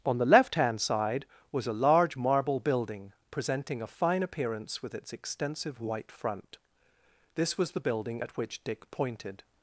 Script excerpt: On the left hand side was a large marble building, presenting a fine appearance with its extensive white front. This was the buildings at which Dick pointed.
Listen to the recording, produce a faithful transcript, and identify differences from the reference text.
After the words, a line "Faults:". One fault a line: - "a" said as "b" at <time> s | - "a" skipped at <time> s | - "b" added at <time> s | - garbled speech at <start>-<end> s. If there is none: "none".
On the left hand side was a large marble building, presenting a fine appearance with its extensive white front. This was the building at which Dick pointed.
Faults:
- "buildings" said as "building" at 7.8 s